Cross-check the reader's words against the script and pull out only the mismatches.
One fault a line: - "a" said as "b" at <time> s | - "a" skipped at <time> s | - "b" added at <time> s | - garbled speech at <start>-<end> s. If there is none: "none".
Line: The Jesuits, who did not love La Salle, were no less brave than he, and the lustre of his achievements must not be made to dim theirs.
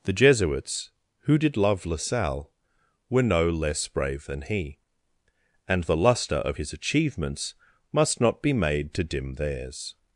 - "not" skipped at 1.6 s